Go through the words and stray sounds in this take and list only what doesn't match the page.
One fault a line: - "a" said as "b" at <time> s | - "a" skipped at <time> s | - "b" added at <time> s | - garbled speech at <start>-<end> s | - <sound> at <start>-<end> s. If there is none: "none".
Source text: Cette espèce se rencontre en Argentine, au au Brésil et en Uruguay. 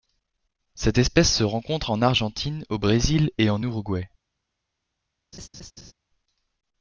- "au" skipped at 2.8 s
- laugh at 5.3-5.9 s